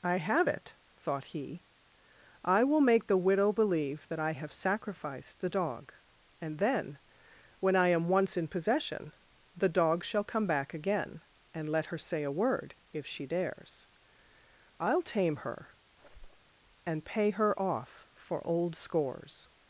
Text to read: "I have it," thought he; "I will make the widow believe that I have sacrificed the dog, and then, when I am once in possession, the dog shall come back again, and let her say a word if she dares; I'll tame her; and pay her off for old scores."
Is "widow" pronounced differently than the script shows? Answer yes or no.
no